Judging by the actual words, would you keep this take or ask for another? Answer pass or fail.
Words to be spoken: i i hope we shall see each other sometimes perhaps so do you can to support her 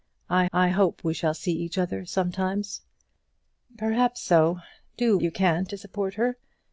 pass